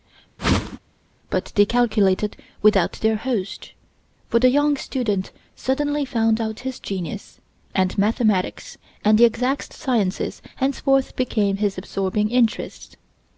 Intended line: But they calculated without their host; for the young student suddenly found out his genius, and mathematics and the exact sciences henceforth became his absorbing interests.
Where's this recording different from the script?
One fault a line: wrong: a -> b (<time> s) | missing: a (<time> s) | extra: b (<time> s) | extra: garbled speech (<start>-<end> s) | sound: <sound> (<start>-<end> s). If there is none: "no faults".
sound: whoosh (0.4-0.8 s)